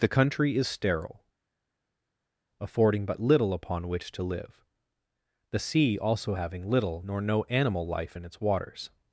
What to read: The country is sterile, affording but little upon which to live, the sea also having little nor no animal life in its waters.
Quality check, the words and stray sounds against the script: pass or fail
pass